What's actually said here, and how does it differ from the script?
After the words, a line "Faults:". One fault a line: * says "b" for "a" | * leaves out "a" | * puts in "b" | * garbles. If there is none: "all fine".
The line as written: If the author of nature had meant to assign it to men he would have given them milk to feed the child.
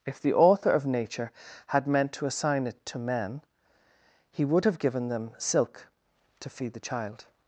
If the author of nature had meant to assign it to men he would have given them silk to feed the child.
Faults:
* says "silk" for "milk"